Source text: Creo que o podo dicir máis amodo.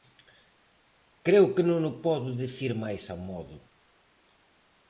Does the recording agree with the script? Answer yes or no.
no